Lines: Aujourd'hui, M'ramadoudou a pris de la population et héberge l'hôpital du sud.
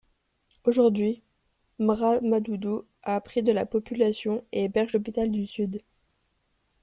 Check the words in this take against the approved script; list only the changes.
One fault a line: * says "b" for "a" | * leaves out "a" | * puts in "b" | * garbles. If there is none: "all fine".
all fine